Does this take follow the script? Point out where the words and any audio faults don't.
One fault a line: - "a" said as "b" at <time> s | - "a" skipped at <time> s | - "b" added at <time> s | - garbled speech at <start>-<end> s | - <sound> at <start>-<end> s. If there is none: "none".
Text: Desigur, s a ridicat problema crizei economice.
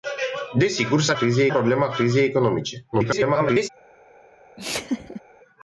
- "ridicat" said as "crizei" at 1.1 s
- garbled speech at 2.9-3.7 s
- laugh at 4.6-5.2 s